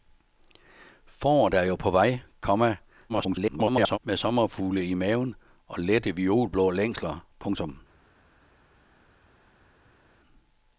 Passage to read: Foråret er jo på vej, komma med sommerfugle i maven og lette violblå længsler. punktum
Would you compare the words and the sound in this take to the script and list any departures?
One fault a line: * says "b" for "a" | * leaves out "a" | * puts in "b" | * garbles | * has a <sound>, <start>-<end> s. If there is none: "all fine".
* garbles